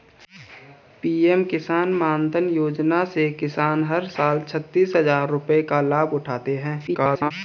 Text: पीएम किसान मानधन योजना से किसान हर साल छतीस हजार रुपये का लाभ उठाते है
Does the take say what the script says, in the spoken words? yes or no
no